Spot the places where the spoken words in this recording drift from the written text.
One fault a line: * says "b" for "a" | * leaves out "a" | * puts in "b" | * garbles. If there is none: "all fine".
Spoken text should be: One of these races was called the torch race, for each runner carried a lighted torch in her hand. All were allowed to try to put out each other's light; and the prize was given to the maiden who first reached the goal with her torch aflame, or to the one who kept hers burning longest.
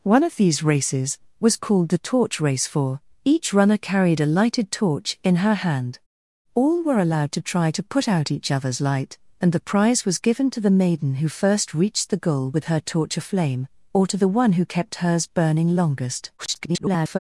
* garbles